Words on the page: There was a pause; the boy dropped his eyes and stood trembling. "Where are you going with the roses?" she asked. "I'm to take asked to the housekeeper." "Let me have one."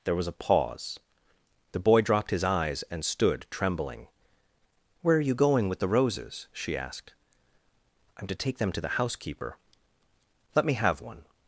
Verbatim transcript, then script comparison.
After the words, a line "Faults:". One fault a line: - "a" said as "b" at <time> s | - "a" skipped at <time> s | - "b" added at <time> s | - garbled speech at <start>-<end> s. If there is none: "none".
There was a pause; the boy dropped his eyes and stood trembling. "Where are you going with the roses?" she asked. "I'm to take them to the housekeeper." "Let me have one."
Faults:
- "asked" said as "them" at 8.6 s